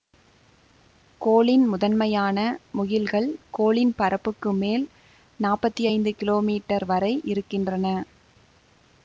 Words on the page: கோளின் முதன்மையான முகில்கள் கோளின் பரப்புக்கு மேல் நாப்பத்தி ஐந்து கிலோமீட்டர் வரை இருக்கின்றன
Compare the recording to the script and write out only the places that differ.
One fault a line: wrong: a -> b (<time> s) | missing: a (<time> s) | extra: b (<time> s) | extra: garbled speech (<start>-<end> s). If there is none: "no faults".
no faults